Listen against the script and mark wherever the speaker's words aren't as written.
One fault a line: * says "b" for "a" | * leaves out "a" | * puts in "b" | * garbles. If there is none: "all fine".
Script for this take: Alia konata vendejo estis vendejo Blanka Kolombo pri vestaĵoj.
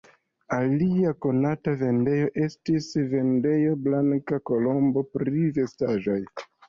all fine